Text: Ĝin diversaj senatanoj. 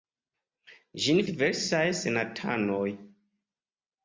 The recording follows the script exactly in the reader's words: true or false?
true